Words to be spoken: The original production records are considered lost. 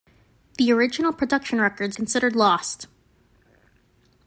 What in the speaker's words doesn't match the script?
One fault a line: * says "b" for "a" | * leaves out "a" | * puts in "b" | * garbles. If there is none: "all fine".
* leaves out "are"